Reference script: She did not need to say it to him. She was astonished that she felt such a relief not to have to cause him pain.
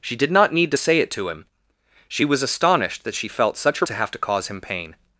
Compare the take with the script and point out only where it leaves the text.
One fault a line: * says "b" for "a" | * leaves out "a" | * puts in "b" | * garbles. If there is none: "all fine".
* leaves out "relief not"